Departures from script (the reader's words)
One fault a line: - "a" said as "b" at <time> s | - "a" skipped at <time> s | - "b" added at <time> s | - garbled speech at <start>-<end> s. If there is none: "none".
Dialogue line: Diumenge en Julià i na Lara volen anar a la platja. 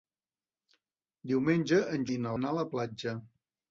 - "Julià" skipped at 2.1 s
- "Lara volen" skipped at 2.3 s